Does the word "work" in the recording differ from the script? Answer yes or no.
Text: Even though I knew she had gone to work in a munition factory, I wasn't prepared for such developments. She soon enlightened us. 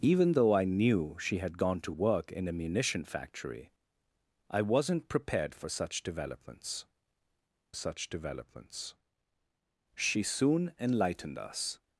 no